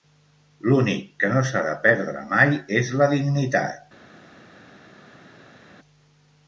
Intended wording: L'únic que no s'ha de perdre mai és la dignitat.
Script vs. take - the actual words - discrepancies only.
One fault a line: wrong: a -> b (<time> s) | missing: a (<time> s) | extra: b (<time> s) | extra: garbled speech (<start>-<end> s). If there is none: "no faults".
no faults